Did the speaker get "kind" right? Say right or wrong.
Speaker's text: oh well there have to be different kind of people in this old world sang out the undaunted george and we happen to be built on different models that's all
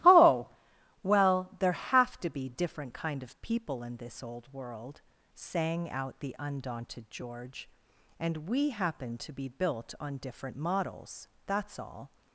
right